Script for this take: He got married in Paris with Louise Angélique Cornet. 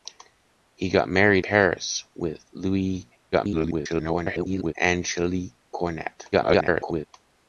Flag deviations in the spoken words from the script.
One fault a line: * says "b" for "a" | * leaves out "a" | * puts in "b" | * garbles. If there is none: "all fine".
* leaves out "in"
* garbles
* garbles